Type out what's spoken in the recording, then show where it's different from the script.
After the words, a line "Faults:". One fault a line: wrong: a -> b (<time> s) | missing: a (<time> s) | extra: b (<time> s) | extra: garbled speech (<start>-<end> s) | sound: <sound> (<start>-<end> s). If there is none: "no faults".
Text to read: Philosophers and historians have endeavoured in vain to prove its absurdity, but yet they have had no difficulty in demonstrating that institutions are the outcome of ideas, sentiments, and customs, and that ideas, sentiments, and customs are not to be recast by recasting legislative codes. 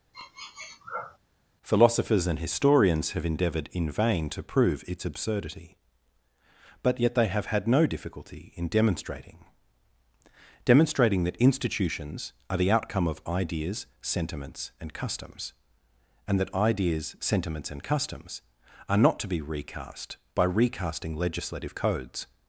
Philosophers and historians have endeavoured in vain to prove its absurdity, but yet they have had no difficulty in demonstrating demonstrating that institutions are the outcome of ideas, sentiments, and customs, and that ideas, sentiments, and customs are not to be recast by recasting legislative codes.
Faults:
sound: sniff (0.1-1.2 s)
extra: demonstrating (10.7 s)